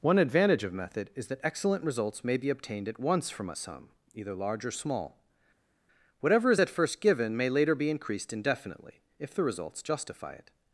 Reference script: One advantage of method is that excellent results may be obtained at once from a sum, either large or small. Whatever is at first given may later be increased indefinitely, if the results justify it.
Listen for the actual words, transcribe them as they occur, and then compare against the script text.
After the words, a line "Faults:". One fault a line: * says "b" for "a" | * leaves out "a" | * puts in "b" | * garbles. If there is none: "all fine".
One advantage of method is that excellent results may be obtained at once from a sum, either large or small. Whatever is at first given may later be increased indefinitely, if the results justify it.
Faults:
all fine